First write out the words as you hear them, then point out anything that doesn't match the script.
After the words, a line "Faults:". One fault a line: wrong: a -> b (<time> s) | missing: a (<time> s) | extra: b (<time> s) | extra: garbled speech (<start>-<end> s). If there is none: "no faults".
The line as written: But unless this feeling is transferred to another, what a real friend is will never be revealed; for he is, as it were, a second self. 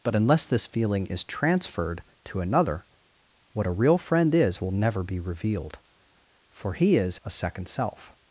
But unless this feeling is transferred to another, what a real friend is will never be revealed; for he is, a second self.
Faults:
missing: as it were (7.2 s)